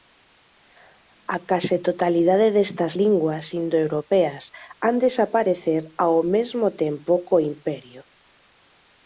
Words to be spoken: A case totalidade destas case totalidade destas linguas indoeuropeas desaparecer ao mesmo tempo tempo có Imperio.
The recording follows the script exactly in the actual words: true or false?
false